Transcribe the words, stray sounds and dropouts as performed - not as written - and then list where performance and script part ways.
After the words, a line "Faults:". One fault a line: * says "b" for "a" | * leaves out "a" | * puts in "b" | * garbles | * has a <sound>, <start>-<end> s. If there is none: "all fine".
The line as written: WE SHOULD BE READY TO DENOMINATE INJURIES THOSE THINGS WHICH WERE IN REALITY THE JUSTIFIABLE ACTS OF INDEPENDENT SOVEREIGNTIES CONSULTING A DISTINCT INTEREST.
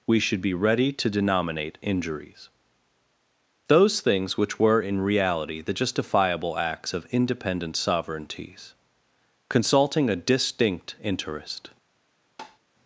WE SHOULD BE READY TO DENOMINATE INJURIES THOSE THINGS WHICH WERE IN REALITY THE JUSTIFIABLE ACTS OF INDEPENDENT SOVEREIGNTIES CONSULTING A DISTINCT INTEREST.
Faults:
* has a tap, 12.4-12.6 s